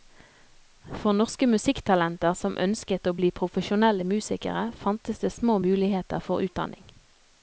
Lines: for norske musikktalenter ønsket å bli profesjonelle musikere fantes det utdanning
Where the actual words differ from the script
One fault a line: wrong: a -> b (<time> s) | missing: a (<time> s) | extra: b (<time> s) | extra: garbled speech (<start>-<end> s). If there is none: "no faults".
extra: som (2.4 s)
extra: små muligheter for (5.4 s)